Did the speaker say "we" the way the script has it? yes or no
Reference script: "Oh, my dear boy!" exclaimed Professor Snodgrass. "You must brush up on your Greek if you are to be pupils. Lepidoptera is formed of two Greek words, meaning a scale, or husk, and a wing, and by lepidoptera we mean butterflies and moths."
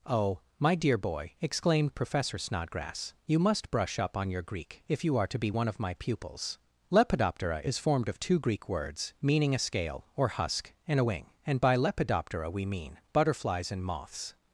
yes